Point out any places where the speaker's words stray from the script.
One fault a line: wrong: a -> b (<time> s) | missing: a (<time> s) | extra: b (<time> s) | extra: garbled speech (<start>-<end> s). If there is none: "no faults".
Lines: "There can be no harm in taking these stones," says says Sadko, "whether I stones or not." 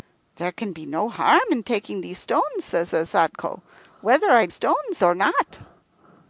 no faults